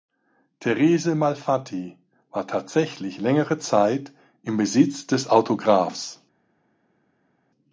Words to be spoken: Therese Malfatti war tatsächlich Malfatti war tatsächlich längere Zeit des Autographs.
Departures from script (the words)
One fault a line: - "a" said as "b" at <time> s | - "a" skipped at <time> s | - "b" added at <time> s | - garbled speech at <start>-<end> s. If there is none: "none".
- "Malfatti war tatsächlich längere Zeit" said as "längere Zeit im Besitz" at 3.2 s